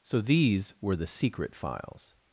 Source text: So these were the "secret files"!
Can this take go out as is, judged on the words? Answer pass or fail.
pass